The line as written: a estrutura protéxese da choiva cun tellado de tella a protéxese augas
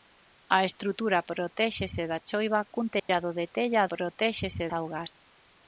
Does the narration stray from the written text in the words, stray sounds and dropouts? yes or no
yes